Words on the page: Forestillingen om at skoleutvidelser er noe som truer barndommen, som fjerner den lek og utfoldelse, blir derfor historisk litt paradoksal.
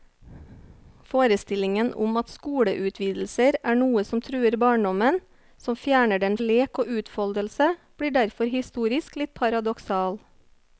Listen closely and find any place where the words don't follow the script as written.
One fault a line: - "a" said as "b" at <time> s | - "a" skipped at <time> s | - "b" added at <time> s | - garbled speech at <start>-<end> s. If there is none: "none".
none